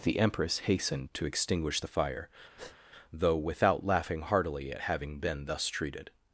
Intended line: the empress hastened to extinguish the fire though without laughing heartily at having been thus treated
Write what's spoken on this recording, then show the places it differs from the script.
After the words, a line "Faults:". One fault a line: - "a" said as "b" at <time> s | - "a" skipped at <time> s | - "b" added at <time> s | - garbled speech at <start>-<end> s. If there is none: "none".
the empress hastened to extinguish the fire though without laughing heartily at having been thus treated
Faults:
none